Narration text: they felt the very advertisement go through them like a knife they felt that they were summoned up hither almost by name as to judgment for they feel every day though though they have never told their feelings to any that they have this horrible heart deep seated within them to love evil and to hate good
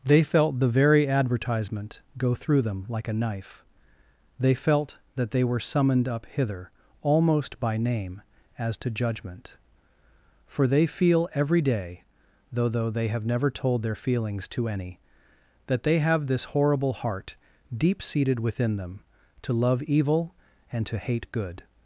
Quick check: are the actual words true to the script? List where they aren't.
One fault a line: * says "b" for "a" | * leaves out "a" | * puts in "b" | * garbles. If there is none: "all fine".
all fine